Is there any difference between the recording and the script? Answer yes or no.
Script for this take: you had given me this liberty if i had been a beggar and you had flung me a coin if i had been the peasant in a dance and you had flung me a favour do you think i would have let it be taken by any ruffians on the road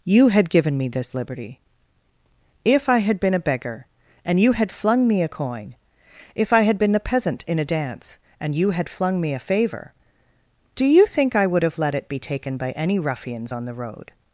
no